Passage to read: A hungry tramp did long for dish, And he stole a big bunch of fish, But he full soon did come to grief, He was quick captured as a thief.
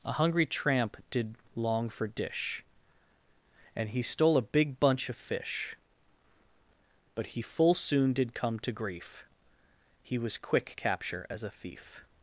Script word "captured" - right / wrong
wrong